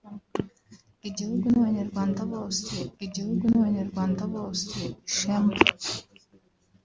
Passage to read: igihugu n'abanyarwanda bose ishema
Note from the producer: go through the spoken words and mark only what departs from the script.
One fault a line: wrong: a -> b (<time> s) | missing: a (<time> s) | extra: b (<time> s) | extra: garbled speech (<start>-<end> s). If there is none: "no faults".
extra: igihugu n'abanyarwanda bose (3.0 s)